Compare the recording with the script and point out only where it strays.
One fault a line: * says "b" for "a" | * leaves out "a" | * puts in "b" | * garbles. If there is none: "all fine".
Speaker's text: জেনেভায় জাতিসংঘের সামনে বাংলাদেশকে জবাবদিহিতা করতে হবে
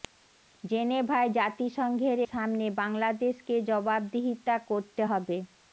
all fine